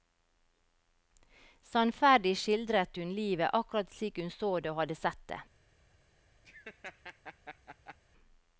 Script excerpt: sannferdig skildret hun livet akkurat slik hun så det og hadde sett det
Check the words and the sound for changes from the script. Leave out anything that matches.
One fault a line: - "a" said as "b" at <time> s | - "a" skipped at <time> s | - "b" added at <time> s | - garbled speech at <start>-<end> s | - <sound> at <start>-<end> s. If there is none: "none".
- laugh at 6.4-8.0 s